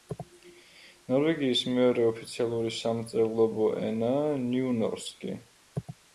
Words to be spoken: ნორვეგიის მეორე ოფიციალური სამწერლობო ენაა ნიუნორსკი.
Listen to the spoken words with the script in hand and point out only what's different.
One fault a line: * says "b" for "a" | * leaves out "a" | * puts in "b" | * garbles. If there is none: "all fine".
all fine